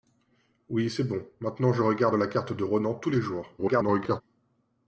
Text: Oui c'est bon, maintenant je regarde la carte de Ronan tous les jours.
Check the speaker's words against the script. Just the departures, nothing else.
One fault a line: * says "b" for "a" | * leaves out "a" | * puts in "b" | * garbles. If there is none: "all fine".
* garbles